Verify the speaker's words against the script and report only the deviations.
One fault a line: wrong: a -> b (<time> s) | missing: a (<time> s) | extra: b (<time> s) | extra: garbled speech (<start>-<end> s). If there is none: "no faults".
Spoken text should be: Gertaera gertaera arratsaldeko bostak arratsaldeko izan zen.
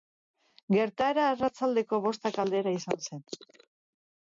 missing: gertaera (1.3 s)
wrong: arratsaldeko -> aldera (2.5 s)